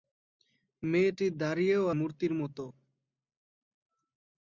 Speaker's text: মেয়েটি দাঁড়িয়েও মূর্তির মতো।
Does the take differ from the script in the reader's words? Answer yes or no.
no